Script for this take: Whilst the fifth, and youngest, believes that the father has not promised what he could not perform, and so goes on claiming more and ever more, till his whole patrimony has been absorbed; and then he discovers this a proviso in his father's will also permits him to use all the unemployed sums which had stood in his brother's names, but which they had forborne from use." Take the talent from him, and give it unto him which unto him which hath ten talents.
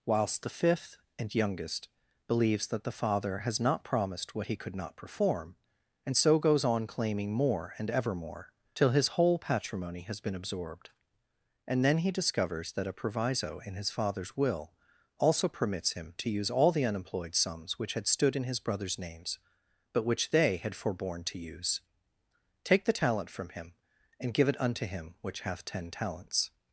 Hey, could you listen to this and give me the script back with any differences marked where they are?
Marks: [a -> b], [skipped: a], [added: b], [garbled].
Whilst the fifth, and youngest, believes that the father has not promised what he could not perform, and so goes on claiming more and ever more, till his whole patrimony has been absorbed; and then he discovers [this -> that] a proviso in his father's will also permits him to use all the unemployed sums which had stood in his brother's names, but which they had forborne [from -> to] use." Take the talent from him, and give it unto him which [skipped: unto him which] hath ten talents.